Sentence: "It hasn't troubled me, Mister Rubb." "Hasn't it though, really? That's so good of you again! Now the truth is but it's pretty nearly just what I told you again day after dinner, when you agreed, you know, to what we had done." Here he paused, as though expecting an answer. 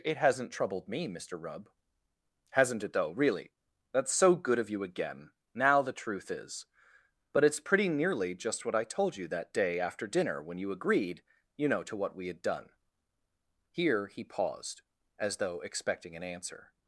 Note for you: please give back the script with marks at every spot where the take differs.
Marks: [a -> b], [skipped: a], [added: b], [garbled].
"It hasn't troubled me, Mister Rubb." "Hasn't it though, really? That's so good of you again! Now the truth is but it's pretty nearly just what I told you [again -> that] day after dinner, when you agreed, you know, to what we had done." Here he paused, as though expecting an answer.